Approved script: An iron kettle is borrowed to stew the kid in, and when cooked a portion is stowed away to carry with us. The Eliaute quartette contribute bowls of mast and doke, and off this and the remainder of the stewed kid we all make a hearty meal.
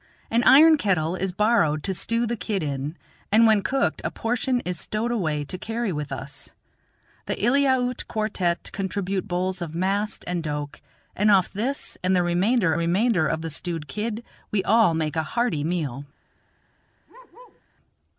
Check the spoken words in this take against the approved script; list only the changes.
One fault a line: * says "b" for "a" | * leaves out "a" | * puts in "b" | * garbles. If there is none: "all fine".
* puts in "remainder"